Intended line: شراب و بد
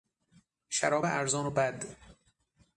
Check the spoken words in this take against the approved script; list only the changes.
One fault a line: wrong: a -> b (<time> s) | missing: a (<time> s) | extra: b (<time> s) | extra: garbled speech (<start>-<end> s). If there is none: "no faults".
extra: ارزان (1.0 s)